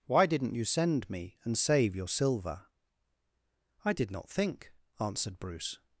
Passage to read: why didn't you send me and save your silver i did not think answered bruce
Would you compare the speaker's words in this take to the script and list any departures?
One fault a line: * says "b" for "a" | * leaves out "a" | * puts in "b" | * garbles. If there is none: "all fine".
all fine